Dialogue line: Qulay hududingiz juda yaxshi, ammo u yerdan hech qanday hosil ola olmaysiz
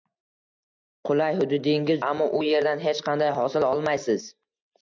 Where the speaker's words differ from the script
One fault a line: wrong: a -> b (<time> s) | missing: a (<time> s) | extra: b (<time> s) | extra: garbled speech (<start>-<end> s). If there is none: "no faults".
missing: juda yaxshi (2.0 s)
missing: ola (3.7 s)